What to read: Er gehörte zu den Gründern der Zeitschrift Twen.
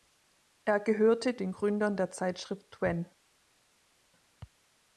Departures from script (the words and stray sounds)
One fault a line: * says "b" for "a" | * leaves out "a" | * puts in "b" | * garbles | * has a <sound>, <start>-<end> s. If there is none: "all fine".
* leaves out "zu"